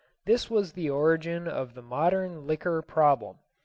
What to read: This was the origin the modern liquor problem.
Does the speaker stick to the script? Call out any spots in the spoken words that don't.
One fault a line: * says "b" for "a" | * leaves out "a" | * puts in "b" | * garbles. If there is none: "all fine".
* puts in "of"